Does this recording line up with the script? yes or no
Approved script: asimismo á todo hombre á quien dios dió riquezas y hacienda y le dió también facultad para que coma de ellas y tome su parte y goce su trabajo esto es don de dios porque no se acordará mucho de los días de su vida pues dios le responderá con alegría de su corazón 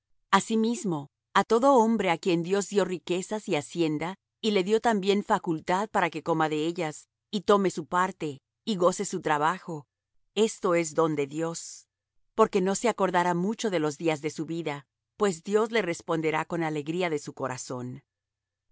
yes